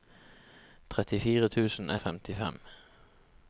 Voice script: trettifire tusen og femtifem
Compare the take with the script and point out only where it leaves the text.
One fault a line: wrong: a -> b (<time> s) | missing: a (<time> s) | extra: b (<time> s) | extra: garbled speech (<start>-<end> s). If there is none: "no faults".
no faults